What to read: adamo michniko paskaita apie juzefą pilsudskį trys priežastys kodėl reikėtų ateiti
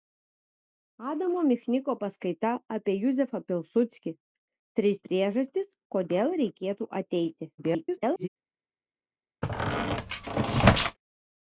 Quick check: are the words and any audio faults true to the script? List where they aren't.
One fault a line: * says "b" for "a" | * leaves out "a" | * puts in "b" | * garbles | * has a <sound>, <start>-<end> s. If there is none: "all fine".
* garbles
* has a squeak, 9.4-11.0 s